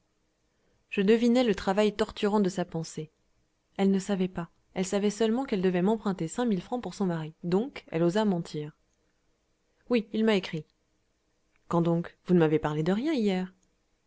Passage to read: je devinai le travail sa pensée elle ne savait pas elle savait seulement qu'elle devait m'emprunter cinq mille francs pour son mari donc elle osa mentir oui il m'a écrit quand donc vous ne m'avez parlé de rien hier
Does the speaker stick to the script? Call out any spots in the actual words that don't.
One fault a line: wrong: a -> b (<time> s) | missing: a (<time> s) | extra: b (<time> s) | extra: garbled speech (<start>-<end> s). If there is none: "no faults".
extra: torturant de (1.9 s)